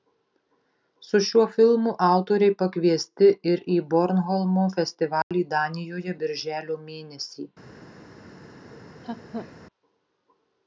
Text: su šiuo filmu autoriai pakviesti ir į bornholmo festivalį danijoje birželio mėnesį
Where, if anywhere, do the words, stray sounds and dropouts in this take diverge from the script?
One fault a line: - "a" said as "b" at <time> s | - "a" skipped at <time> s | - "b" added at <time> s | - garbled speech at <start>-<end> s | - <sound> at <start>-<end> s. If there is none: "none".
- dropout at 5.2-5.3 s
- laugh at 8.7-9.5 s